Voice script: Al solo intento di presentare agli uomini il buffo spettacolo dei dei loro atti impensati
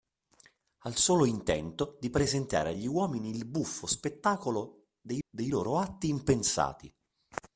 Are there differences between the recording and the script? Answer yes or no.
no